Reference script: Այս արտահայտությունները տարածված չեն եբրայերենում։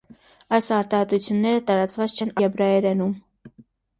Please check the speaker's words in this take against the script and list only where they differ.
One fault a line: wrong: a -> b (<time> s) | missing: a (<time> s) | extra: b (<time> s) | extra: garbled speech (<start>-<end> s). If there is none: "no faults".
no faults